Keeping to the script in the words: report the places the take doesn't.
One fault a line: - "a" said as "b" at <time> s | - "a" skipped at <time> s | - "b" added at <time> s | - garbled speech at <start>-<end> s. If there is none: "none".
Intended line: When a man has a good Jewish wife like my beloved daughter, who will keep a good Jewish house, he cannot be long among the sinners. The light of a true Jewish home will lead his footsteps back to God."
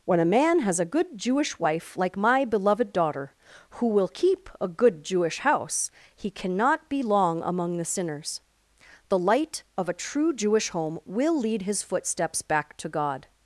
none